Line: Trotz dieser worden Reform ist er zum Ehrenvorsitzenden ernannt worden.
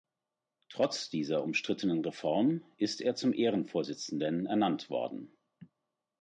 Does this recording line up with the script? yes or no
no